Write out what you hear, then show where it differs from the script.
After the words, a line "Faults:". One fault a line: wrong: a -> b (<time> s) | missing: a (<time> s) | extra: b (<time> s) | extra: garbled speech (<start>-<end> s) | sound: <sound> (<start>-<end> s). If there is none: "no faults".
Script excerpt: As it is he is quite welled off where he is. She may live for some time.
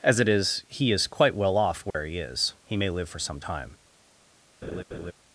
As it is he is quite well off where he is. He may live for some time.
Faults:
wrong: welled -> well (1.4 s)
sound: dropout (1.9-1.9 s)
wrong: She -> He (2.6 s)
sound: laugh (4.6-5.1 s)